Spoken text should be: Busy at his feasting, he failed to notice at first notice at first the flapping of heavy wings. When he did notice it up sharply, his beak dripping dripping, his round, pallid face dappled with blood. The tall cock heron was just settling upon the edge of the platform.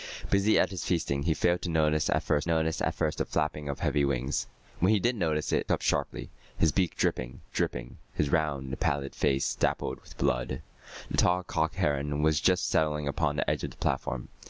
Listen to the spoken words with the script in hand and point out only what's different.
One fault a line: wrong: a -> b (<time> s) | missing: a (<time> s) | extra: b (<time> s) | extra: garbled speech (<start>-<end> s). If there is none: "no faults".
no faults